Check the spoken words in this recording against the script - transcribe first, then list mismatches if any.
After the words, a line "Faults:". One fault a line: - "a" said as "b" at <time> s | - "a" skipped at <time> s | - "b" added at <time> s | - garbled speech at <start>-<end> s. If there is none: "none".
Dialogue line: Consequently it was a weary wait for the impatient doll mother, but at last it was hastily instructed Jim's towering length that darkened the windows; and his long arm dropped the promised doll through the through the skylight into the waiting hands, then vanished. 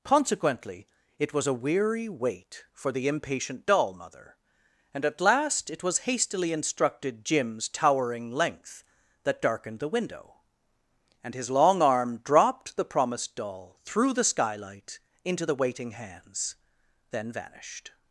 Consequently it was a weary wait for the impatient doll mother, and at last it was hastily instructed Jim's towering length that darkened the window; and his long arm dropped the promised doll through the skylight into the waiting hands, then vanished.
Faults:
- "but" said as "and" at 4.9 s
- "windows" said as "window" at 9.9 s
- "through the" skipped at 14.2 s